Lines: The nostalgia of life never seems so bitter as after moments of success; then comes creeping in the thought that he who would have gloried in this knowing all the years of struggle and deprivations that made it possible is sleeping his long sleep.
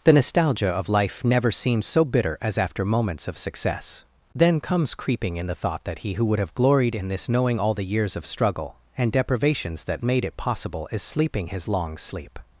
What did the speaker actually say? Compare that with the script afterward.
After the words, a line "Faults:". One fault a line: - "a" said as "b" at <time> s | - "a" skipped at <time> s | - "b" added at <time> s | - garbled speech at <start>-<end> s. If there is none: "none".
The nostalgia of life never seems so bitter as after moments of success; then comes creeping in the thought that he who would have gloried in this knowing all the years of struggle and deprivations that made it possible is sleeping his long sleep.
Faults:
none